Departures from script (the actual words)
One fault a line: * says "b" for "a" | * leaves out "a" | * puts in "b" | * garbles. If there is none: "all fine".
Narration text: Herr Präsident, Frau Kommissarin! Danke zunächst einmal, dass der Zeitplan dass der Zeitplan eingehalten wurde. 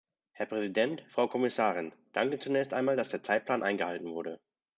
* leaves out "dass der Zeitplan"